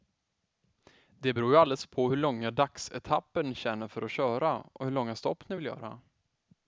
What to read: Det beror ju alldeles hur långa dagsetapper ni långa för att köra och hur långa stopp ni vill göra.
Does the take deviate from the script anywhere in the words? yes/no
yes